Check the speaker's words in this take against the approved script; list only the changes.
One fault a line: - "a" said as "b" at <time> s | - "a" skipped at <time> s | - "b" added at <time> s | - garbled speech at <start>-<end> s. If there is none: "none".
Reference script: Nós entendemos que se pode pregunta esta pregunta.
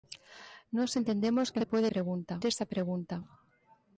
none